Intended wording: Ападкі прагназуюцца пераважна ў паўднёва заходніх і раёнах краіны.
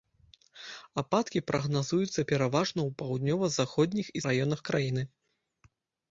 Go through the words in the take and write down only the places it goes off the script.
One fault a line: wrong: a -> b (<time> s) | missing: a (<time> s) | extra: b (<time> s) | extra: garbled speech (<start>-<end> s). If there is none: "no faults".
no faults